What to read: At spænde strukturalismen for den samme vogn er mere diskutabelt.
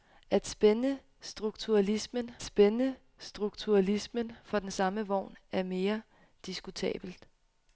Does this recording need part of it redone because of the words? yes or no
yes